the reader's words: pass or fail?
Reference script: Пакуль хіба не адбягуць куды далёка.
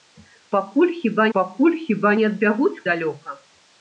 fail